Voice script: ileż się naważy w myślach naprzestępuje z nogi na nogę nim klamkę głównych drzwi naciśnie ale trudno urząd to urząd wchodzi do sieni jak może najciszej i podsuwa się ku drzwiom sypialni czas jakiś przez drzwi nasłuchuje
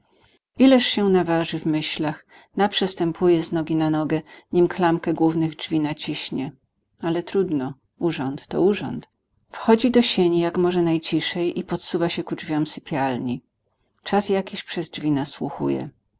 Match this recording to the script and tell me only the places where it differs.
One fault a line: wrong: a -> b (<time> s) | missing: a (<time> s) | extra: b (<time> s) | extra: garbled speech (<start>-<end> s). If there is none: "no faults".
no faults